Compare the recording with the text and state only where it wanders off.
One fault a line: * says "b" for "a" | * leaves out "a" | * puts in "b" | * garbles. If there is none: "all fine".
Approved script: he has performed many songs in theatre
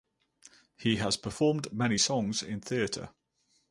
all fine